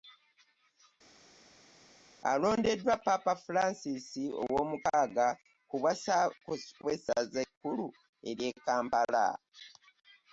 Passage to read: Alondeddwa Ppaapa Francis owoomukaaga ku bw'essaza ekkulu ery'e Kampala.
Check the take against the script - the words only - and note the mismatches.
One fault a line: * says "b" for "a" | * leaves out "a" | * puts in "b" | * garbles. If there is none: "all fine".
all fine